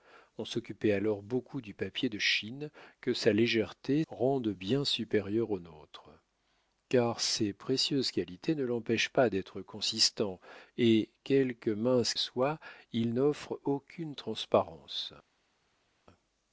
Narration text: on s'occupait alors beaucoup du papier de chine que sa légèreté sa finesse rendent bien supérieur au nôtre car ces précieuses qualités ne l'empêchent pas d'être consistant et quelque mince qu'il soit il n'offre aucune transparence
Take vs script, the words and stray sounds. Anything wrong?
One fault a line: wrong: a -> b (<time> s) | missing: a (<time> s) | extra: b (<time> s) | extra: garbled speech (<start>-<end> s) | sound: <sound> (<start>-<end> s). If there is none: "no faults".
missing: sa finesse (4.0 s)
missing: qu'il (12.1 s)